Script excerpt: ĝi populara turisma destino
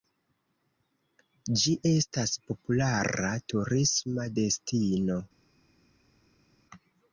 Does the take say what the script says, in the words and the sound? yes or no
no